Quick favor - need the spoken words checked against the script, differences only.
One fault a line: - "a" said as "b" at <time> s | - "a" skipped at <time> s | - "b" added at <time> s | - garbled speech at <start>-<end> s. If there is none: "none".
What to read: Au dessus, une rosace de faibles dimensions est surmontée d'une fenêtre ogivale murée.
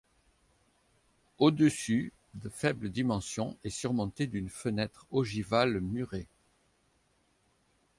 - "une rosace" skipped at 2.1 s